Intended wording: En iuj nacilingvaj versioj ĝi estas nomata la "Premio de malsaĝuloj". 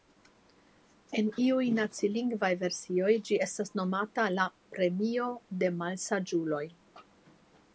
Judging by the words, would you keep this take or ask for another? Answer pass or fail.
pass